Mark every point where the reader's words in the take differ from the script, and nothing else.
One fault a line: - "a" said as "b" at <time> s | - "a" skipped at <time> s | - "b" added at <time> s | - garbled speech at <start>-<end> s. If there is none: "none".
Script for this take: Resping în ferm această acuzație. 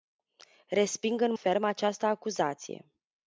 none